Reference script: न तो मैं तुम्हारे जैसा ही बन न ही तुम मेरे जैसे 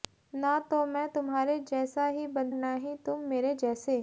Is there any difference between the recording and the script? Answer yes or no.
no